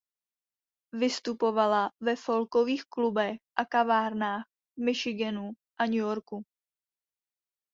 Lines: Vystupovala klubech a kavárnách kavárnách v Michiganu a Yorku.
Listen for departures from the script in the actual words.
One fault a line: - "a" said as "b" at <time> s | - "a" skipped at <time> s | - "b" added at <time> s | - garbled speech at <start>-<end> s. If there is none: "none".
- "ve folkových" added at 2.0 s
- "kavárnách" skipped at 4.4 s
- "New" added at 5.8 s